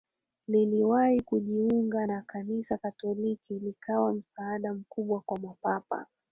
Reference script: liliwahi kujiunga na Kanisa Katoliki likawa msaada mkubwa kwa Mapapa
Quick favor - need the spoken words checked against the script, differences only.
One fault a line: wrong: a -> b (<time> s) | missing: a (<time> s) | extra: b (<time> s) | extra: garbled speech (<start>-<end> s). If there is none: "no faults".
no faults